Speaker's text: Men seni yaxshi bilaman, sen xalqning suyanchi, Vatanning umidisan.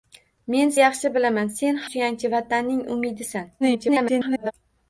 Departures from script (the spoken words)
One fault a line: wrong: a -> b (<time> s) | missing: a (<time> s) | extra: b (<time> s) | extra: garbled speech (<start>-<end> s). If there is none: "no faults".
missing: seni (0.7 s)
missing: xalqning (1.8 s)
extra: garbled speech (3.6-4.5 s)